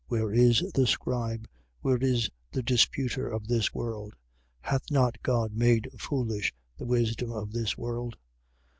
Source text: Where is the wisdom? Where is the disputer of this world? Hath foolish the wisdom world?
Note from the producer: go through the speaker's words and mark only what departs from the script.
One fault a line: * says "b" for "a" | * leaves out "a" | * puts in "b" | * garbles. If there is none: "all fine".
* says "scribe" for "wisdom"
* puts in "not God made"
* puts in "of this"